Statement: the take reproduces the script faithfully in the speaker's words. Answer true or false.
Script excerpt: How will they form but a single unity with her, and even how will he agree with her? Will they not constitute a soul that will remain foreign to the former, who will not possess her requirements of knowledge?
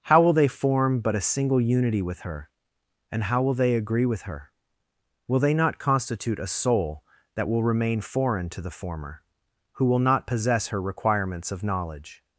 false